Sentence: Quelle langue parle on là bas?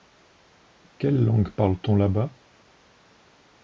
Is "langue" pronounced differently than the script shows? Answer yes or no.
no